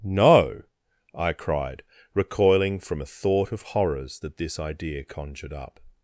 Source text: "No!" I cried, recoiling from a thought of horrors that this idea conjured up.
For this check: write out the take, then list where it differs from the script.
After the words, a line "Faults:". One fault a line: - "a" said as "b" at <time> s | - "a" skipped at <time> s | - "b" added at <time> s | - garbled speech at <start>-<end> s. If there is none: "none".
"No!" I cried, recoiling from a thought of horrors that this idea conjured up.
Faults:
none